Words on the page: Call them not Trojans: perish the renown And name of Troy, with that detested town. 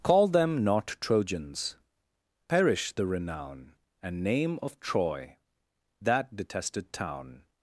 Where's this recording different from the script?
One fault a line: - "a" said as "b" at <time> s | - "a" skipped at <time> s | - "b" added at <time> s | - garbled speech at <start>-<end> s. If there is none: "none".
- "with" skipped at 5.4 s